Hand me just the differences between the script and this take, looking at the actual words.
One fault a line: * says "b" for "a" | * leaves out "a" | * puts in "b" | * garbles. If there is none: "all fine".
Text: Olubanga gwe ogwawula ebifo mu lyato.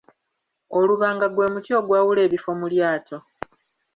* puts in "muti"